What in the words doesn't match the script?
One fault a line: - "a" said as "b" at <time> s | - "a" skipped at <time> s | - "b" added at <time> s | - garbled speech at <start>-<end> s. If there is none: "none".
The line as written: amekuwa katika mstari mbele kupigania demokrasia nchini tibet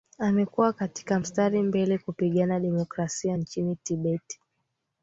none